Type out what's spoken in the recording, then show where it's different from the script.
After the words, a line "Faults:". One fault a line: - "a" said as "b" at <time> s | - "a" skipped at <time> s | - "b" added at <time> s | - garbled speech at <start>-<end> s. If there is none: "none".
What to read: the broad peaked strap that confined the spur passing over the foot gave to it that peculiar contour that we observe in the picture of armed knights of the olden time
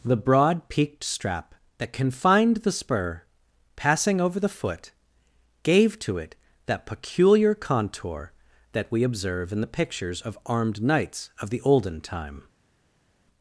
the broad peaked strap that confined the spur passing over the foot gave to it that peculiar contour that we observe in the pictures of armed knights of the olden time
Faults:
- "picture" said as "pictures" at 9.7 s